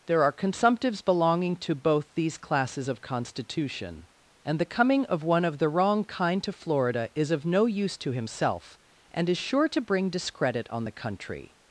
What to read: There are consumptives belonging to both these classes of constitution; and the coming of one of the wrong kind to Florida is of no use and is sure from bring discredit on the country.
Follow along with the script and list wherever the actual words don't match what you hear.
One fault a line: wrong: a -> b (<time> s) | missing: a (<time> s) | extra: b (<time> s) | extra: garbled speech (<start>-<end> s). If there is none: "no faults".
extra: to himself (8.0 s)
wrong: from -> to (9.7 s)